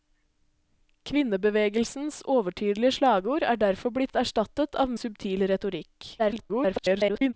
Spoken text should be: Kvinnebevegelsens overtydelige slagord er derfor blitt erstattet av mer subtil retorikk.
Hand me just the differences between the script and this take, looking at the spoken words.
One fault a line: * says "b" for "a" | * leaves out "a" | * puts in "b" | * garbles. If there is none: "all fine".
* leaves out "mer"
* garbles